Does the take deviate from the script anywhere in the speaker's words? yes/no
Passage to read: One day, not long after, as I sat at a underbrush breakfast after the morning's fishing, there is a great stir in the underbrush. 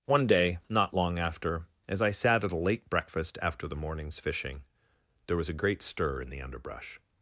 yes